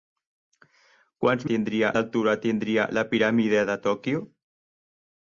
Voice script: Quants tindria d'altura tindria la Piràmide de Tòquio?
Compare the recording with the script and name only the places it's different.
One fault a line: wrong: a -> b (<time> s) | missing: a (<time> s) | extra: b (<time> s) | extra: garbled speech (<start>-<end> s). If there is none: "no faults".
no faults